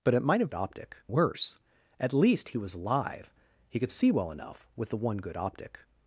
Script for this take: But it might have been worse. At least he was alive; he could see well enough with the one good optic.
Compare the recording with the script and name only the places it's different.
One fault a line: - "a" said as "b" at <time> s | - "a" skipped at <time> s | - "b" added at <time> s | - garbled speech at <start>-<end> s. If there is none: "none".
- "been" said as "optic" at 0.5 s